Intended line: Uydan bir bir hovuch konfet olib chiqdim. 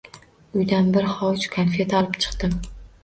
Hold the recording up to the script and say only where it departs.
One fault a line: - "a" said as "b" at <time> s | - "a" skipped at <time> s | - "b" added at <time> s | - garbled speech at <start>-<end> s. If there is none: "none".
- "bir" skipped at 1.1 s